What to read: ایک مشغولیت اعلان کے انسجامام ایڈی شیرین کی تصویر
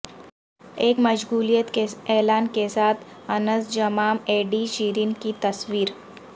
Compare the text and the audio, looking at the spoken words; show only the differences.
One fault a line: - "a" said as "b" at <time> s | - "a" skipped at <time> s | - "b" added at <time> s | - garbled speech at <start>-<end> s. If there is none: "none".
- "کے" added at 1.7 s
- "ساتھ" added at 2.7 s